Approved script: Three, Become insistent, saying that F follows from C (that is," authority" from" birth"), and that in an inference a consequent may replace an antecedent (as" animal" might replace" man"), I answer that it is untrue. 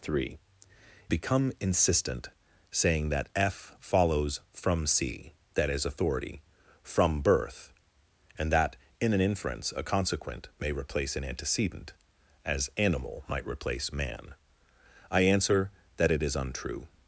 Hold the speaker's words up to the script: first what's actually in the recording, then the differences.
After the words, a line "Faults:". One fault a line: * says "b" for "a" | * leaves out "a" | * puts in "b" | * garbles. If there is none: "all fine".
Three, Become insistent, saying that F follows from C (that is," authority" from" birth"), and that in an inference a consequent may replace an antecedent (as" animal" might replace" man"), I answer that it is untrue.
Faults:
all fine